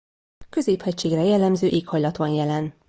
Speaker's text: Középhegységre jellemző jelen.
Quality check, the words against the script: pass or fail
fail